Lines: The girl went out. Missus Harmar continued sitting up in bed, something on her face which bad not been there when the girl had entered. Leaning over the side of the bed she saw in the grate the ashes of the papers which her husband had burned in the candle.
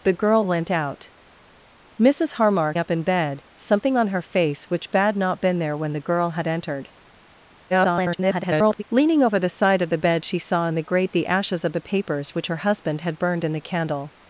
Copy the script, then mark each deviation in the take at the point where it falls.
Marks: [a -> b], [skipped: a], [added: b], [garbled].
The girl went out. Missus Harmar [skipped: continued sitting] up in bed, something on her face which bad not been there when the girl had entered. [garbled] Leaning over the side of the bed she saw in the grate the ashes of the papers which her husband had burned in the candle.